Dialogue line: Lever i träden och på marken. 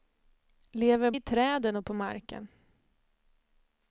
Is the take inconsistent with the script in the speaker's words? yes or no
no